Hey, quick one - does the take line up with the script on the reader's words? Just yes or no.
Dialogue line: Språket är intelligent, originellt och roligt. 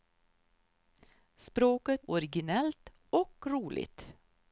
no